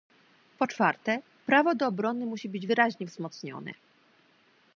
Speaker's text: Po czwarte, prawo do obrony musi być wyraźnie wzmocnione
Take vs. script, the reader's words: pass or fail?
pass